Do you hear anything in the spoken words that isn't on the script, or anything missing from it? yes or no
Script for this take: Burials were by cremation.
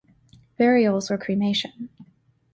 yes